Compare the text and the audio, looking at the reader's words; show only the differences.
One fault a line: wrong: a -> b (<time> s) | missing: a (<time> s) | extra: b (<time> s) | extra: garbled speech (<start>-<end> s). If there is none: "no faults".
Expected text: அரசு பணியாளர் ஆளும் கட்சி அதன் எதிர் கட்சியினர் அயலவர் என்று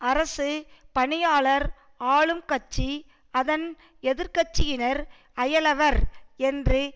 no faults